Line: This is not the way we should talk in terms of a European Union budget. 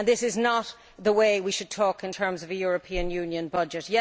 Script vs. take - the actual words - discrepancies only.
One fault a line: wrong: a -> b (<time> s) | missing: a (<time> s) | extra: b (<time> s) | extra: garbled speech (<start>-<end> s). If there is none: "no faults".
no faults